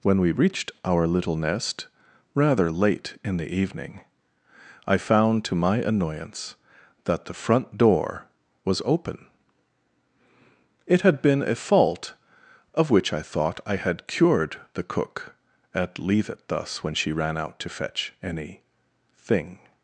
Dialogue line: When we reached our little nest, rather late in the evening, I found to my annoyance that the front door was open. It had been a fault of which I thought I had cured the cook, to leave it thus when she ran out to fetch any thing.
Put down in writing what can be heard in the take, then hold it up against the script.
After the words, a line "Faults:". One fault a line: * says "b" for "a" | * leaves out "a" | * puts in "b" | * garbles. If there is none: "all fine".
When we reached our little nest, rather late in the evening, I found to my annoyance that the front door was open. It had been a fault of which I thought I had cured the cook, at leave it thus when she ran out to fetch any thing.
Faults:
* says "at" for "to"